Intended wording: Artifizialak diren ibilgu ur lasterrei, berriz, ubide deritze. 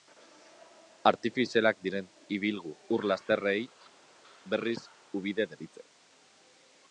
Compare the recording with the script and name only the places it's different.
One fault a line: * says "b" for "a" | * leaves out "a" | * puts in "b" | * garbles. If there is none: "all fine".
all fine